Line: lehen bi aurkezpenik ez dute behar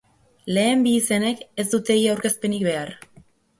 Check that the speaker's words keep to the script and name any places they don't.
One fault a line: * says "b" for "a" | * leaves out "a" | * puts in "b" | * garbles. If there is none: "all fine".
* says "izenek" for "aurkezpenik"
* puts in "ia aurkezpenik"